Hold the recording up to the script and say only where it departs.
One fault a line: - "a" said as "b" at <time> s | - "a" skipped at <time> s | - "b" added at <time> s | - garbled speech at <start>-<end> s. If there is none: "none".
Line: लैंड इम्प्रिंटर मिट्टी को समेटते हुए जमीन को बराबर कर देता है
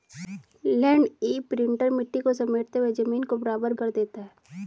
none